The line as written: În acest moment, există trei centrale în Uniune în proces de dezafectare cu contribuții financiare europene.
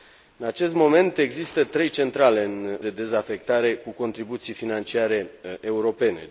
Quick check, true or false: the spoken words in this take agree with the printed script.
false